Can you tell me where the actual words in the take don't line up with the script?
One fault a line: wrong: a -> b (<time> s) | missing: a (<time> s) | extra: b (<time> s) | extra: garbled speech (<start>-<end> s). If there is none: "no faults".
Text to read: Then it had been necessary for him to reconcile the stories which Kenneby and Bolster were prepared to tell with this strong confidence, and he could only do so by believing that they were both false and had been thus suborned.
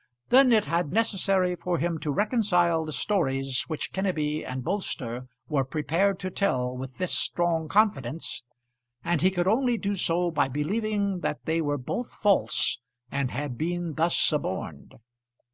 missing: been (0.9 s)